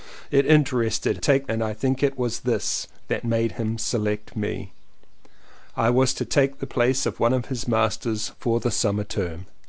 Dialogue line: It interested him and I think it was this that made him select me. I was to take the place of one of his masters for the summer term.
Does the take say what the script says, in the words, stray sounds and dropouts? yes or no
no